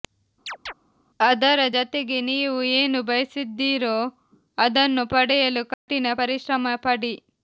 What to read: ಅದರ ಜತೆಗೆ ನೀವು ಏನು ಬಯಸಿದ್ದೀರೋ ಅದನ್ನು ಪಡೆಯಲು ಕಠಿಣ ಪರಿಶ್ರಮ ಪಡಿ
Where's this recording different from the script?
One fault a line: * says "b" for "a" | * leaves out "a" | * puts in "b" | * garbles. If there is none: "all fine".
all fine